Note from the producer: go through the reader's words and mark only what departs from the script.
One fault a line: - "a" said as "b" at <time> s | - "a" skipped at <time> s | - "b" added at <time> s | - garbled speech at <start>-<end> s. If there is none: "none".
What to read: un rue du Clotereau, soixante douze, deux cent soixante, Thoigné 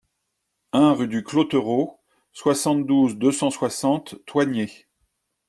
none